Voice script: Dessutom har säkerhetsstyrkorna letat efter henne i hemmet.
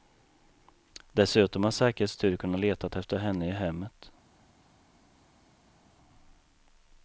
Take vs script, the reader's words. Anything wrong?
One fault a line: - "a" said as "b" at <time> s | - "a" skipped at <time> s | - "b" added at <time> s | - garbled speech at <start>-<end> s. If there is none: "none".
none